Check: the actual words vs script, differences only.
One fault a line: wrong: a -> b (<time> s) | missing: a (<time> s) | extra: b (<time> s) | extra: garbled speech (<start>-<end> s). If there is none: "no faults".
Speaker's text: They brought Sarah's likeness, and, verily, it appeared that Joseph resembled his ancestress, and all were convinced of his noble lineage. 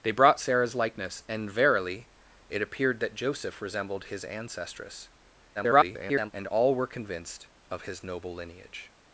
extra: garbled speech (5.5-6.3 s)